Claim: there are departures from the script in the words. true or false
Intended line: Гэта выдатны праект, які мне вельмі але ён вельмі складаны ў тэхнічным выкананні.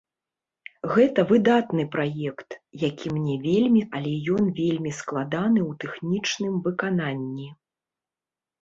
false